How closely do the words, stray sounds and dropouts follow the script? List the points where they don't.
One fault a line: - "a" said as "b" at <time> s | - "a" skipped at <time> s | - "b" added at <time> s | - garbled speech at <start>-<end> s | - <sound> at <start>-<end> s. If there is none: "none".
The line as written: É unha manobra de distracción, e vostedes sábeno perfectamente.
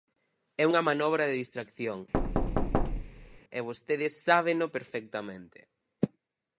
- thud at 2.1-3.4 s